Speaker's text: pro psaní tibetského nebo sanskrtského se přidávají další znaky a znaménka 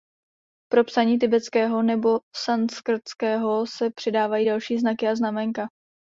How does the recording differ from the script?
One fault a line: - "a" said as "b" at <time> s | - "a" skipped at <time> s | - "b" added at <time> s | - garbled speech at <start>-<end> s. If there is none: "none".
none